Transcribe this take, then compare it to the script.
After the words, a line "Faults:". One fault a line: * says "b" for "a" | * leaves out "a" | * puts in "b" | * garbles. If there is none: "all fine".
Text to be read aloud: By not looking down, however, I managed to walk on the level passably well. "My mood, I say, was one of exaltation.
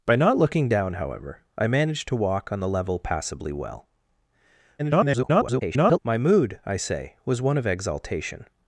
By not looking down, however, I managed to walk on the level passably well. [garbled] "My mood, I say, was one of exaltation.
Faults:
* garbles